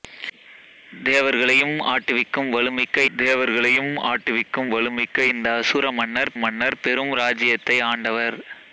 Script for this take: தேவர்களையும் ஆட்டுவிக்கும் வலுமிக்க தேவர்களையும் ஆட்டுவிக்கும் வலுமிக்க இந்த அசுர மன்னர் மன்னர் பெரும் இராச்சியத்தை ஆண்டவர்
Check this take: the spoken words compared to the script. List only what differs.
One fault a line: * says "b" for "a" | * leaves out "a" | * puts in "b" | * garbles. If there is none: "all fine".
all fine